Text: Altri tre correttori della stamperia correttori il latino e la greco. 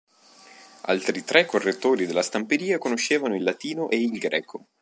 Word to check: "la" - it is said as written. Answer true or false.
false